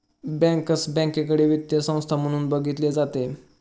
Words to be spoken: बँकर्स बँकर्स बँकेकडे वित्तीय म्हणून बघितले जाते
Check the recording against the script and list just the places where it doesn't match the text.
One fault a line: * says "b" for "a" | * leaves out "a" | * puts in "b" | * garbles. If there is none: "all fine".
* leaves out "बँकर्स"
* puts in "संस्था"